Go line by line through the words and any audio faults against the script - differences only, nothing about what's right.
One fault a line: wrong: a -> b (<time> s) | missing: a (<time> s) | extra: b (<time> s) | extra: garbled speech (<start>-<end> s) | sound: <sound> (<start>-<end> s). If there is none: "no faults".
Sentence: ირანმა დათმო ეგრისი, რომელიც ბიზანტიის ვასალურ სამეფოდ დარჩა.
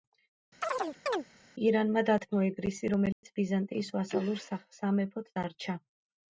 sound: chirp (0.6-1.2 s)
sound: dropout (3.1-3.2 s)